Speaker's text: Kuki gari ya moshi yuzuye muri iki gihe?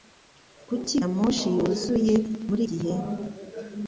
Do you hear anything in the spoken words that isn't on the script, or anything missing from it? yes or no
yes